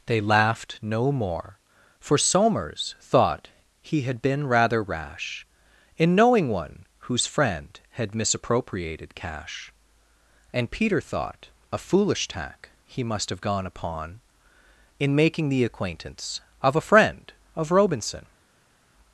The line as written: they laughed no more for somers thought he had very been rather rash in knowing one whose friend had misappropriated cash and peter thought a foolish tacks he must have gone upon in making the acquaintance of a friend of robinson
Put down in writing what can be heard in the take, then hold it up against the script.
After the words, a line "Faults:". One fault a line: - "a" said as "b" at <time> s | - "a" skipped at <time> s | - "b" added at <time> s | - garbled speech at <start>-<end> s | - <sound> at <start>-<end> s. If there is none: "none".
they laughed no more for somers thought he had been rather rash in knowing one whose friend had misappropriated cash and peter thought a foolish tack he must have gone upon in making the acquaintance of a friend of robinson
Faults:
- "very" skipped at 4.2 s
- "tacks" said as "tack" at 12.3 s